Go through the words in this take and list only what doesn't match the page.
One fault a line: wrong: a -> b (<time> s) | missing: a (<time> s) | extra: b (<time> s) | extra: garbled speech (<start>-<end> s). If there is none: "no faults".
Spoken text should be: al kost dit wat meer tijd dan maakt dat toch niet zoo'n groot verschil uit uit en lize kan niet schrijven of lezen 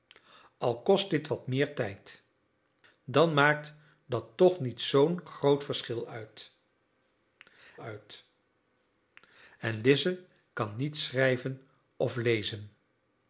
no faults